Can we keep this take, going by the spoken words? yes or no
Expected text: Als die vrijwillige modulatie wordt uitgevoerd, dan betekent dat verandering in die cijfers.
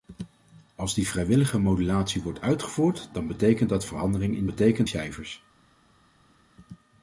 no